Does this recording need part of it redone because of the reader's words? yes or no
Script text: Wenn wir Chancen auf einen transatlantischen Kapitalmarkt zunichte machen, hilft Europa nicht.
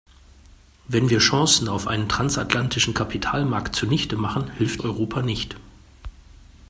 no